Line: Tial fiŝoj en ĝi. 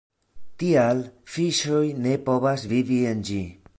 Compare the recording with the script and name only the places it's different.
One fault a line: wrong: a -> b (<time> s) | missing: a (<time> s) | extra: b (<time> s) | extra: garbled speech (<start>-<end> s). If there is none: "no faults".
extra: ne povas vivi (2.1 s)